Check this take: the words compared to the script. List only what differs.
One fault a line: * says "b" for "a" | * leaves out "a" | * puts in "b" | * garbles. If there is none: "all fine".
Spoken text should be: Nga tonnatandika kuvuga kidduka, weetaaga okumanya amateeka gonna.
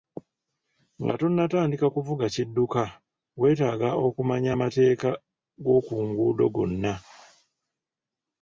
* puts in "g'oku nguudo"